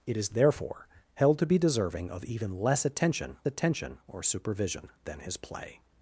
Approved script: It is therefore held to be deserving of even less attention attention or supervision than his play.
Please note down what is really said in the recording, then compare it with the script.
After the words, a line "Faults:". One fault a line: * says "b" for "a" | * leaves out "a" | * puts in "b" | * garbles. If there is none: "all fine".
It is therefore held to be deserving of even less attention attention or supervision than his play.
Faults:
all fine